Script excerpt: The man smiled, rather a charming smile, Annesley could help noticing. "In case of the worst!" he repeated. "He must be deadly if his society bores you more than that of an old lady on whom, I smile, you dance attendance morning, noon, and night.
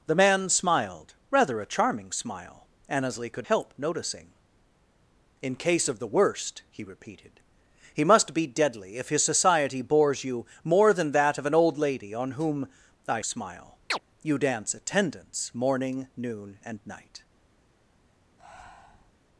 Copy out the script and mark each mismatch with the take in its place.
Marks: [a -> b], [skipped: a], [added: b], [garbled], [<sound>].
The man smiled, rather a charming smile, Annesley could help noticing. "In case of the worst!" he repeated. "He must be deadly if his society bores you more than that of an old lady on whom, I smile, [chirp] you dance attendance morning, noon, and night. [breath]